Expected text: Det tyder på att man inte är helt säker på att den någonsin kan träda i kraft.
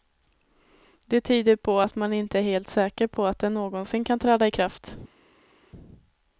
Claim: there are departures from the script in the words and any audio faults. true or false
false